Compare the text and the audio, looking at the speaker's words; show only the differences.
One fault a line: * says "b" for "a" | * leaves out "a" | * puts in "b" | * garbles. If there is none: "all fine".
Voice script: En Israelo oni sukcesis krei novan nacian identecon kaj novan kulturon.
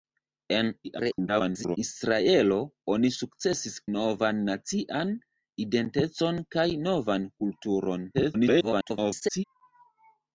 * garbles
* leaves out "krei"
* garbles